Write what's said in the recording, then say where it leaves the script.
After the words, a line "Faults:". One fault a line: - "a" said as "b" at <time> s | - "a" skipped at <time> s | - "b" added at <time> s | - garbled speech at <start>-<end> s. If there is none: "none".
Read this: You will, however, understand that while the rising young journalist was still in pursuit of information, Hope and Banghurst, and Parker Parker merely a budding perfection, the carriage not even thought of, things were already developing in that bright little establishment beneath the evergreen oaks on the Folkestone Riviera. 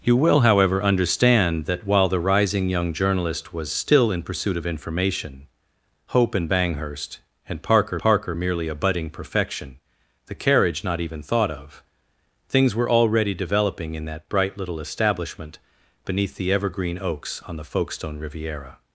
You will, however, understand that while the rising young journalist was still in pursuit of information, Hope and Banghurst, and Parker Parker merely a budding perfection, the carriage not even thought of, things were already developing in that bright little establishment beneath the evergreen oaks on the Folkestone Riviera.
Faults:
none